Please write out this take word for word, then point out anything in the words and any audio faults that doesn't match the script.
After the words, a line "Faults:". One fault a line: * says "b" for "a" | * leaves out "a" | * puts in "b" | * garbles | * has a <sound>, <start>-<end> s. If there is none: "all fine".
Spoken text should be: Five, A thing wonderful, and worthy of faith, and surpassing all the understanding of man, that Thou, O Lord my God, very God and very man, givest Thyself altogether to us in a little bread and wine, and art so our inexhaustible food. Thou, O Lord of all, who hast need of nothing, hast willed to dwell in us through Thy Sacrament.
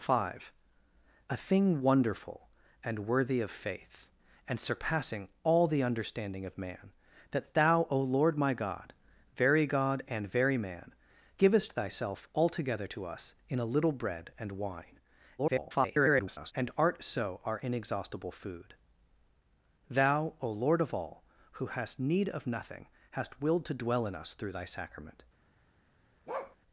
Five, A thing wonderful, and worthy of faith, and surpassing all the understanding of man, that Thou, O Lord my God, very God and very man, givest Thyself altogether to us in a little bread and wine, [garbled] and art so our inexhaustible food. Thou, O Lord of all, who hast need of nothing, hast willed to dwell in us through Thy Sacrament.
Faults:
* garbles
* has a bark, 26.3-26.6 s